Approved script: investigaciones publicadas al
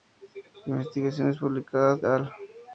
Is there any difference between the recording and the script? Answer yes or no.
no